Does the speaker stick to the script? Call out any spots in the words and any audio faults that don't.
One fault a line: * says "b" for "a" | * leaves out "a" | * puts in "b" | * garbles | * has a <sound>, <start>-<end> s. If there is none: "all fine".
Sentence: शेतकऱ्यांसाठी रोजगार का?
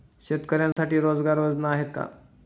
* has a dropout, 0.7-0.8 s
* puts in "योजना आहेत"